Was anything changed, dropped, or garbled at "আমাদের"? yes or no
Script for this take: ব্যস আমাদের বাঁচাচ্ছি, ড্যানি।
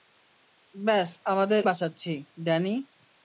no